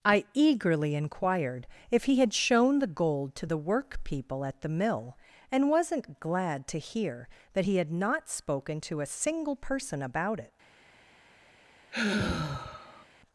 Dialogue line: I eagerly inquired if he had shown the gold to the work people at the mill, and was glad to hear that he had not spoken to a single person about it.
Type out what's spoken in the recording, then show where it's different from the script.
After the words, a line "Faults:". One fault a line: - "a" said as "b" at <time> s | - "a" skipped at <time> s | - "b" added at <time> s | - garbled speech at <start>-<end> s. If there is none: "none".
I eagerly inquired if he had shown the gold to the work people at the mill, and wasn't glad to hear that he had not spoken to a single person about it.
Faults:
- "was" said as "wasn't" at 5.7 s